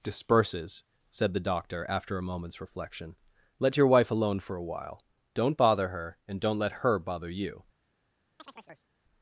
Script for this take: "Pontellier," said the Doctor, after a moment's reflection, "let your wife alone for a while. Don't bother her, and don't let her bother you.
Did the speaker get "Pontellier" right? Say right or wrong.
wrong